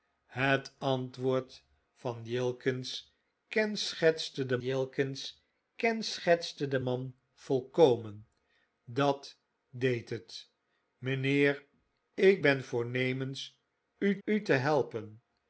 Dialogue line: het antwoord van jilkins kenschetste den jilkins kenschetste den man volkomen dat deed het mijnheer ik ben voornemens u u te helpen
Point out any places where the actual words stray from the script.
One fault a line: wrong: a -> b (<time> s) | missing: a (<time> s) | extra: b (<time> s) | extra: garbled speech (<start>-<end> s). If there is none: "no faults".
no faults